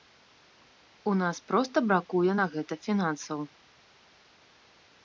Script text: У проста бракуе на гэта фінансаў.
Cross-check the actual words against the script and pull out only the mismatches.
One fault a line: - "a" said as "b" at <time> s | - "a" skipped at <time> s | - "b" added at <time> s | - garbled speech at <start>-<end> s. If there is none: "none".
- "нас" added at 1.2 s